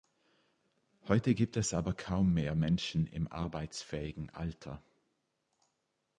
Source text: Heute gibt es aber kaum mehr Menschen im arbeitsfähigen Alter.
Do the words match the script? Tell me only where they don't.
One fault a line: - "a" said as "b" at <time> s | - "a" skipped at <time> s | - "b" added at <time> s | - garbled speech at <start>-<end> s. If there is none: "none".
none